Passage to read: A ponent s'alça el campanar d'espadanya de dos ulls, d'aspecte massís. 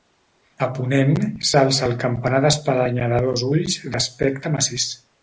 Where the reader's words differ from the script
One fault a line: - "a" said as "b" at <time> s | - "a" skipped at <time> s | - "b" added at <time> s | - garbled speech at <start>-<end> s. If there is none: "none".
none